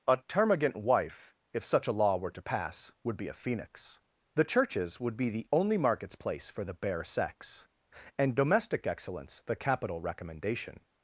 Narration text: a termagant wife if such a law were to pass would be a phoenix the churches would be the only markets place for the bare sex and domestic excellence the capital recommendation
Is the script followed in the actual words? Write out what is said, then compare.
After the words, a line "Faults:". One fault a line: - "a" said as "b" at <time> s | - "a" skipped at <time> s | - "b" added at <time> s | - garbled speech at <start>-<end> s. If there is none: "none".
a termagant wife if such a law were to pass would be a phoenix the churches would be the only markets place for the bare sex and domestic excellence the capital recommendation
Faults:
none